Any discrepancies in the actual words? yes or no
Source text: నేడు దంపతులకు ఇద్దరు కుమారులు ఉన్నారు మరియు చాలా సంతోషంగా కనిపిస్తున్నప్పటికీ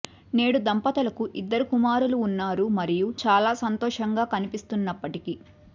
no